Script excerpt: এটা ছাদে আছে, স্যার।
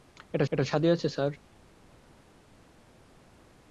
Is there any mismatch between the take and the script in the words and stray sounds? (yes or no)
yes